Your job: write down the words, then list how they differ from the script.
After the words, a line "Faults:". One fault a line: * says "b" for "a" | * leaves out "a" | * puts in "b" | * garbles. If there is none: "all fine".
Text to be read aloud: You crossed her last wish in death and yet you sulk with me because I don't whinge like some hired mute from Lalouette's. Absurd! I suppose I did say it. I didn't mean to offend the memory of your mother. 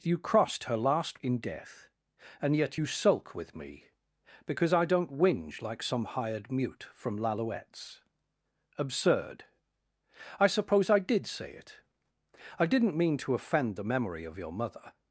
You crossed her last in death and yet you sulk with me because I don't whinge like some hired mute from Lalouette's. Absurd! I suppose I did say it. I didn't mean to offend the memory of your mother.
Faults:
* leaves out "wish"